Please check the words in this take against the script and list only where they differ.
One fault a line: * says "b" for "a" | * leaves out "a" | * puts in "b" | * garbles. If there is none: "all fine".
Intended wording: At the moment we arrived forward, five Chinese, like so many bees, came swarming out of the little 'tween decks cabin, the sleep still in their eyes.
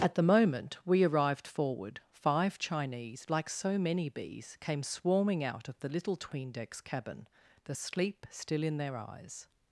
all fine